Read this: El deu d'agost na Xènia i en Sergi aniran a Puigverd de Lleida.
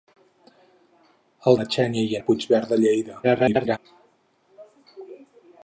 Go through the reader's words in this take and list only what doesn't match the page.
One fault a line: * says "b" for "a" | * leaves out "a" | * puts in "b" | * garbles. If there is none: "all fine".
* leaves out "deu d'agost"
* leaves out "en Sergi aniran"
* garbles